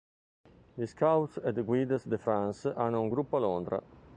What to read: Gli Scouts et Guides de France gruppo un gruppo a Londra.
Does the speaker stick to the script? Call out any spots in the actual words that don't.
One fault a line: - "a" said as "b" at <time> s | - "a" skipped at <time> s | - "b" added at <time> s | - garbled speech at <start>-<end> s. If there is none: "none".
- "gruppo" said as "hanno" at 2.8 s